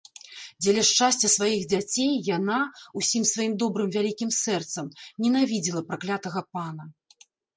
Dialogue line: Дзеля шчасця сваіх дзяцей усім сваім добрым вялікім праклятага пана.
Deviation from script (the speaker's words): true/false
true